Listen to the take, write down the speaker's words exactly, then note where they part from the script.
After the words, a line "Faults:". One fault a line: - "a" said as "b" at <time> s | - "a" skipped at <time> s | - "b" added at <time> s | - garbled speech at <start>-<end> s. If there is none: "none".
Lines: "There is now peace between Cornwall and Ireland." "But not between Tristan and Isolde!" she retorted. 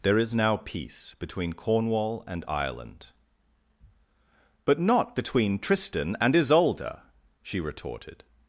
"There is now peace between Cornwall and Ireland." "But not between Tristan and Isolde!" she retorted.
Faults:
none